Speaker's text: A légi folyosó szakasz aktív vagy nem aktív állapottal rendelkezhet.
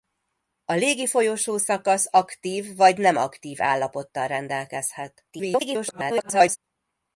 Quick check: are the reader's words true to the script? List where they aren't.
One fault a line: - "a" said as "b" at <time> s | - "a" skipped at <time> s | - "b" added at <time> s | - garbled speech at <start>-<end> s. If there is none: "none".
- garbled speech at 5.3-6.6 s